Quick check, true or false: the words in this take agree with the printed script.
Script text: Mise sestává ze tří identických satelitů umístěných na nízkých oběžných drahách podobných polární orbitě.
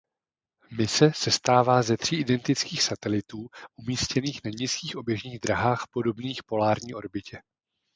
true